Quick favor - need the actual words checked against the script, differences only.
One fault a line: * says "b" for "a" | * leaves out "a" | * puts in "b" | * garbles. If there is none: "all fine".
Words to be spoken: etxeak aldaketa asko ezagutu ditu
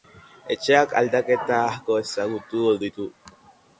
all fine